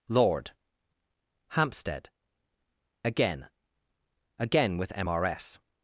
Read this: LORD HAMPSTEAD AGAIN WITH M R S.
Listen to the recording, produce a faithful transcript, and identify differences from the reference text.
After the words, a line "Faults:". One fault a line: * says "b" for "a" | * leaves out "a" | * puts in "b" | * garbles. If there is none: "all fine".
LORD HAMPSTEAD AGAIN AGAIN WITH M R S.
Faults:
* puts in "AGAIN"